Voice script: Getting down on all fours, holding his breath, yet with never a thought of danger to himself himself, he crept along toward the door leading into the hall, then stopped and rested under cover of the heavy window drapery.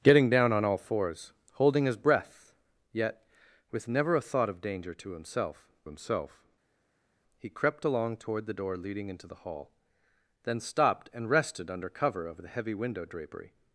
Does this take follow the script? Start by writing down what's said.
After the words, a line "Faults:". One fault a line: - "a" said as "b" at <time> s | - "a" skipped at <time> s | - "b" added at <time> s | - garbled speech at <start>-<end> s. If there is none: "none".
Getting down on all fours, holding his breath, yet with never a thought of danger to himself himself, he crept along toward the door leading into the hall, then stopped and rested under cover of the heavy window drapery.
Faults:
none